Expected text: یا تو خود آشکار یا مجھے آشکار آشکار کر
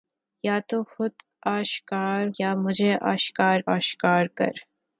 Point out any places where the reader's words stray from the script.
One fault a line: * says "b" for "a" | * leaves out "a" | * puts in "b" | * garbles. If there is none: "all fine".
all fine